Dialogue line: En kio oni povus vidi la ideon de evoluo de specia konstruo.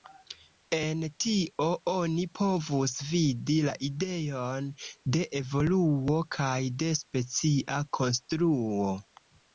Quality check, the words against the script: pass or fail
fail